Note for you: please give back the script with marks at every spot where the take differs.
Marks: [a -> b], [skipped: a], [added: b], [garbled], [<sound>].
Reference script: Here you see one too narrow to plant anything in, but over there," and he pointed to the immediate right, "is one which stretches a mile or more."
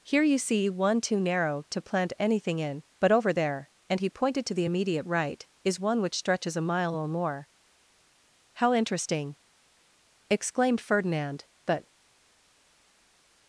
Here you see one too narrow to plant anything in, but over there," and he pointed to the immediate right, "is one which stretches a mile or more." [added: How interesting exclaimed Ferdinand But]